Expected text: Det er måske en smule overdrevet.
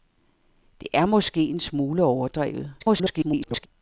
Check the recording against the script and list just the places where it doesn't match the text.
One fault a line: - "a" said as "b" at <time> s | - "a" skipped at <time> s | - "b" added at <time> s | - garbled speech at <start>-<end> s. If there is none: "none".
- garbled speech at 2.8-3.7 s